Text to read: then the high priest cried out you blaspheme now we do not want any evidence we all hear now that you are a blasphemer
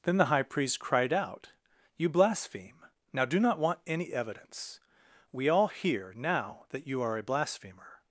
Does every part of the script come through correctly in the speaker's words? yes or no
no